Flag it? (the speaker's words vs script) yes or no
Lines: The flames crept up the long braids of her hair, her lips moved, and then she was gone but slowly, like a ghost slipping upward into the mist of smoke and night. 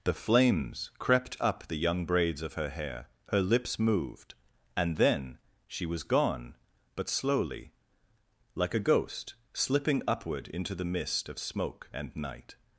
yes